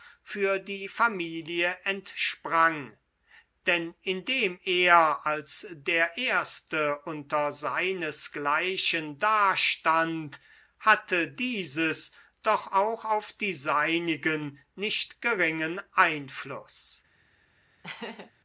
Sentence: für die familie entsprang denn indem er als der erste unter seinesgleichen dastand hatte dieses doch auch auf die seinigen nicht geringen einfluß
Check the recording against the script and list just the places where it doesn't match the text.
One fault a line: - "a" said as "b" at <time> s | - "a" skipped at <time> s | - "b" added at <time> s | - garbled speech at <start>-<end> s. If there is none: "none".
none